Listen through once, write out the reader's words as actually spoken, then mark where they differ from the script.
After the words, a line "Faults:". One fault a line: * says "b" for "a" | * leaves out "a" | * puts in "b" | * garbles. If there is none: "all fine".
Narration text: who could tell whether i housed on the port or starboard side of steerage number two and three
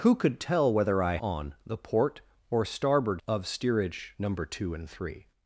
who could tell whether i on the port or starboard of steerage number two and three
Faults:
* leaves out "housed"
* leaves out "side"